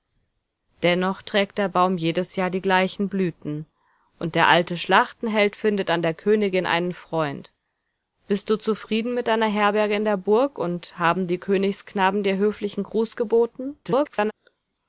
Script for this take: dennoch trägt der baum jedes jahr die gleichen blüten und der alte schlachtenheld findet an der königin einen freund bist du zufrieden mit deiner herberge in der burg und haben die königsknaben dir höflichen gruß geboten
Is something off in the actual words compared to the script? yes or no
yes